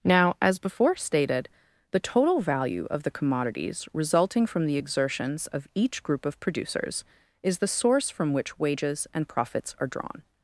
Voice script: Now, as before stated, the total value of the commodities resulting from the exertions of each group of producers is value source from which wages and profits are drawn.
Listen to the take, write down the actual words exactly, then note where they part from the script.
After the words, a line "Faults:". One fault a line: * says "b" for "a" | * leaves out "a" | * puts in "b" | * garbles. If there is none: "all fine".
Now, as before stated, the total value of the commodities resulting from the exertions of each group of producers is the source from which wages and profits are drawn.
Faults:
* says "the" for "value"